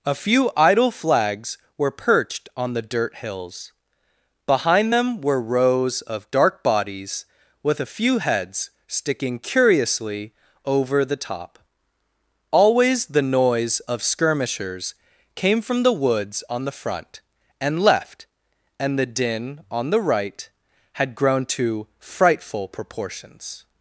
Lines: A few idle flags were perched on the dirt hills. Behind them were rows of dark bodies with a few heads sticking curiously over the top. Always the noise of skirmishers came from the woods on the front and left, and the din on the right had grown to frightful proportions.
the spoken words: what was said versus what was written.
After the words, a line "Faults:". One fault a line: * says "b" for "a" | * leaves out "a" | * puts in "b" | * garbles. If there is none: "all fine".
A few idle flags were perched on the dirt hills. Behind them were rows of dark bodies with a few heads sticking curiously over the top. Always the noise of skirmishers came from the woods on the front and left, and the din on the right had grown to frightful proportions.
Faults:
all fine